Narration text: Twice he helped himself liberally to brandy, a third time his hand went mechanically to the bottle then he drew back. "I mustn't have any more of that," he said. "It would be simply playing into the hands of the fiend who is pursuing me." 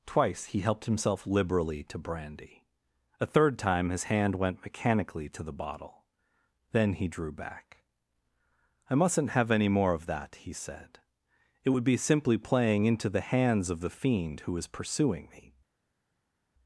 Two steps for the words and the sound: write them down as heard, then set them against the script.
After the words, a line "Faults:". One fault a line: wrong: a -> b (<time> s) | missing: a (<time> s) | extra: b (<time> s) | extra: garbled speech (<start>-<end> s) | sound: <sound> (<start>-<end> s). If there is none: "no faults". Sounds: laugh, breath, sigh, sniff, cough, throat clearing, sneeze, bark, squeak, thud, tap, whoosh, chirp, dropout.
Twice he helped himself liberally to brandy, a third time his hand went mechanically to the bottle then he drew back. "I mustn't have any more of that," he said. "It would be simply playing into the hands of the fiend who is pursuing me."
Faults:
no faults